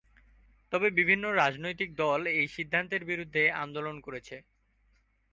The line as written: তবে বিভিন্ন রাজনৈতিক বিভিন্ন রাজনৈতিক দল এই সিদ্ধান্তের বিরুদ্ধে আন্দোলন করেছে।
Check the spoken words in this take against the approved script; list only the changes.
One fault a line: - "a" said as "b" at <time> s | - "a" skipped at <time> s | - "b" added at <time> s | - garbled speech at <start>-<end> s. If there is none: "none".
- "বিভিন্ন রাজনৈতিক" skipped at 1.9 s